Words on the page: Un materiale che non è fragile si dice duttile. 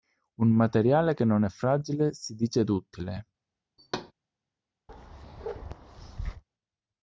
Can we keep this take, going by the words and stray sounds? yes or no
no